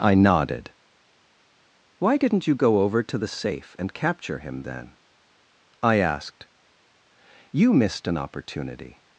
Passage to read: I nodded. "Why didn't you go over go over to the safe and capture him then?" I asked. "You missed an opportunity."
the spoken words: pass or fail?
fail